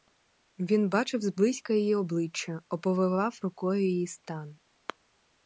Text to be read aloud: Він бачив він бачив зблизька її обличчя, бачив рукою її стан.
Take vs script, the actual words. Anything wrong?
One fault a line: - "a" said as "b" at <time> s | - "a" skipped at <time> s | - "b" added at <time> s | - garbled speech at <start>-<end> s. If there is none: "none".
- "він бачив" skipped at 1.2 s
- "бачив" said as "оповивав" at 2.7 s